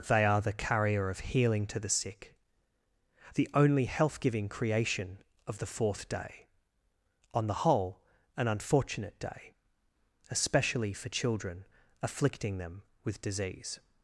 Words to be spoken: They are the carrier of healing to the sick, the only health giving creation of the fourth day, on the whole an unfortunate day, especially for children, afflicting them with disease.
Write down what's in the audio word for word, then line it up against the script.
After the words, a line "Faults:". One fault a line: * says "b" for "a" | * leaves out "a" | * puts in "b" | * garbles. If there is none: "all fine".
They are the carrier of healing to the sick, the only health giving creation of the fourth day, on the whole an unfortunate day, especially for children, afflicting them with disease.
Faults:
all fine